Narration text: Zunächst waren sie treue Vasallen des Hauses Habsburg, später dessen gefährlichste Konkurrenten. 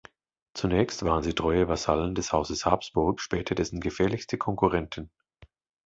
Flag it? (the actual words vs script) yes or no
no